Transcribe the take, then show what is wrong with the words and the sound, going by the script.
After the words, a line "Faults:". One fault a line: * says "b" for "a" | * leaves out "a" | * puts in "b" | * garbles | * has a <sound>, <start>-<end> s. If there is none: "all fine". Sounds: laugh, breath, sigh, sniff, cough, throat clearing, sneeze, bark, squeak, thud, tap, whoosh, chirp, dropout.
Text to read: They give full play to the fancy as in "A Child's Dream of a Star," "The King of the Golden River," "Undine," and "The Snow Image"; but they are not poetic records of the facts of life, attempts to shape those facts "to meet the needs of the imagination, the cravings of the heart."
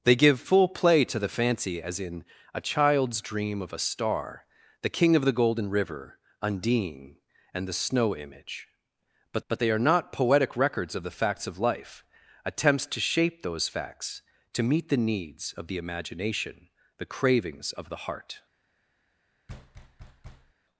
They give full play to the fancy as in "A Child's Dream of a Star," "The King of the Golden River," "Undine," and "The Snow Image"; but but they are not poetic records of the facts of life, attempts to shape those facts "to meet the needs of the imagination, the cravings of the heart."
Faults:
* puts in "but"
* has a thud, 19.5-20.5 s